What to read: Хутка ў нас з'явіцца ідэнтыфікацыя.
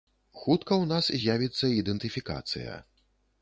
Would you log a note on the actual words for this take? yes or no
no